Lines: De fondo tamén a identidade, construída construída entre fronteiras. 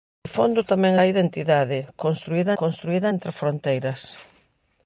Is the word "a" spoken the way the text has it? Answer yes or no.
yes